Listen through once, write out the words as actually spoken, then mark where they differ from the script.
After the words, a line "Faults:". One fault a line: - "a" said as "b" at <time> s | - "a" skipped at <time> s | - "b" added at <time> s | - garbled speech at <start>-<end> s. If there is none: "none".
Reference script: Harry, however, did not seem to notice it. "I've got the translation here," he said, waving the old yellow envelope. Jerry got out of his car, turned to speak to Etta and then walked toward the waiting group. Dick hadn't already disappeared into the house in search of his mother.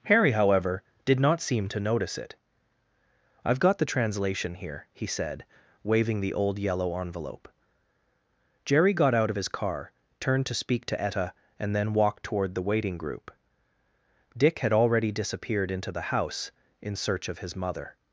Harry, however, did not seem to notice it. "I've got the translation here," he said, waving the old yellow envelope. Jerry got out of his car, turned to speak to Etta and then walked toward the waiting group. Dick had already disappeared into the house in search of his mother.
Faults:
- "hadn't" said as "had" at 14.6 s